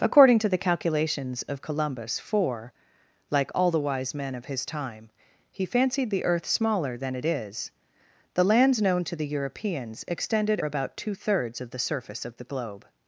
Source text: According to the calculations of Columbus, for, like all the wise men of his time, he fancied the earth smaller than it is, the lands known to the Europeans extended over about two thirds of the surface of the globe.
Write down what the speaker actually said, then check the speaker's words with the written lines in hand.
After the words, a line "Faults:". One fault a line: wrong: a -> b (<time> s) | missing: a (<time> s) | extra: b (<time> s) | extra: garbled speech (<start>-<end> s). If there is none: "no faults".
According to the calculations of Columbus, for, like all the wise men of his time, he fancied the earth smaller than it is, the lands known to the Europeans extended about two thirds of the surface of the globe.
Faults:
missing: over (10.6 s)